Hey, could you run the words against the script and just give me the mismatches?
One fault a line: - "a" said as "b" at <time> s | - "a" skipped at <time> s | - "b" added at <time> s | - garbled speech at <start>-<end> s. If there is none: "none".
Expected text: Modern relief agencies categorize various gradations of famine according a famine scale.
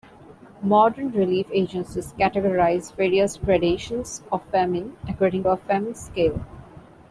none